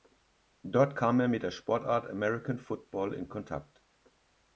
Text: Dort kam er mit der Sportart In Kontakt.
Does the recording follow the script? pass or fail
fail